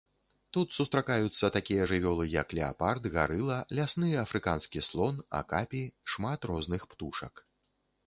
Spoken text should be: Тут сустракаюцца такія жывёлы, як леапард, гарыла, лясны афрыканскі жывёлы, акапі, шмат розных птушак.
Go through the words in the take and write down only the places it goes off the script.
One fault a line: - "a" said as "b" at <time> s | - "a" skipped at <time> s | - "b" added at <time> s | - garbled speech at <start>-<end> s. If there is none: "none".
- "жывёлы" said as "слон" at 4.9 s